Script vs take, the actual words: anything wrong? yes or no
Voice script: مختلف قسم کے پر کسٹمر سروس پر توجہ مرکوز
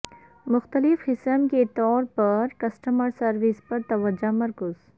yes